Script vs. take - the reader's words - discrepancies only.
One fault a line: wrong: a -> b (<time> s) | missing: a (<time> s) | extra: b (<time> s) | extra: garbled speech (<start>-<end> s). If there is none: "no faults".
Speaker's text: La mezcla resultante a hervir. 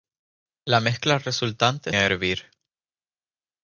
no faults